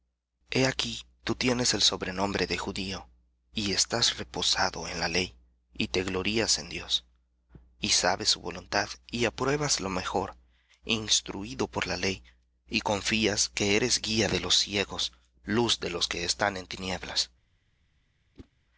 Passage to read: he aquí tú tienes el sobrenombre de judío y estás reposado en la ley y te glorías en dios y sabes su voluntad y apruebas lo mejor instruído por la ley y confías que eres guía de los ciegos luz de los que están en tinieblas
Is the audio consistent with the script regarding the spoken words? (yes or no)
yes